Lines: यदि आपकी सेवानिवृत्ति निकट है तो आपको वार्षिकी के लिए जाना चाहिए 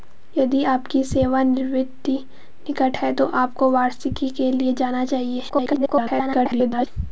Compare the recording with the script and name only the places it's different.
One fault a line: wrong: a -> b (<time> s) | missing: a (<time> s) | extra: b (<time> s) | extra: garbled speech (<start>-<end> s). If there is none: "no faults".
extra: garbled speech (5.5-6.9 s)